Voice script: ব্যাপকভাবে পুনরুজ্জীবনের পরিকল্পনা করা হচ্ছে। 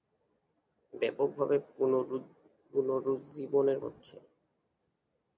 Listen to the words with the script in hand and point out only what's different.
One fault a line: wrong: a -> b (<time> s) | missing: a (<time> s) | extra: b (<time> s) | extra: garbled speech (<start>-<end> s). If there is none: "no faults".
missing: পরিকল্পনা করা (3.8 s)